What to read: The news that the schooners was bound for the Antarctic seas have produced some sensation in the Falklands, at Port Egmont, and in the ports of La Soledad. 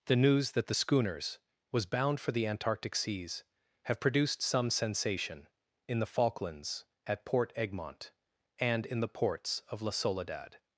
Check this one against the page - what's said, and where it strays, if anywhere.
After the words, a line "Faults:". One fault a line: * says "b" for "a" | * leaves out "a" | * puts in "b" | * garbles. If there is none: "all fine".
The news that the schooners was bound for the Antarctic seas have produced some sensation in the Falklands, at Port Egmont, and in the ports of La Soledad.
Faults:
all fine